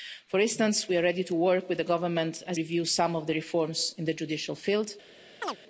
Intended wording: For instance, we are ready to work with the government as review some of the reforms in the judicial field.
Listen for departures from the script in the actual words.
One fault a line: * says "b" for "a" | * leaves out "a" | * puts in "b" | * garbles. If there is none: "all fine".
all fine